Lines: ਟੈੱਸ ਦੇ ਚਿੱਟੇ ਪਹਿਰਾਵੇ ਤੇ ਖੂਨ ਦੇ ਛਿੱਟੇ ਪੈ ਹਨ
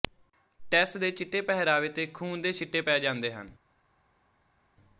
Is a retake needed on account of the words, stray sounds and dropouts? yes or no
yes